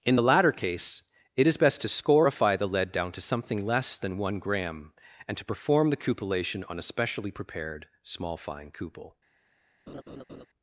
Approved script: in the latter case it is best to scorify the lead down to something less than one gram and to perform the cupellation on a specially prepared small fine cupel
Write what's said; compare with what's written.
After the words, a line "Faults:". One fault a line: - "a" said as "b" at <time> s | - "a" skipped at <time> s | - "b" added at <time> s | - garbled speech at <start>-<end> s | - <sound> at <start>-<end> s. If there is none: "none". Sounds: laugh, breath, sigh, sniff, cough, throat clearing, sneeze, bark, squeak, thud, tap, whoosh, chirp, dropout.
in the latter case it is best to scorify the lead down to something less than one gram and to perform the cupellation on a specially prepared small fine cupel
Faults:
- laugh at 9.9-10.5 s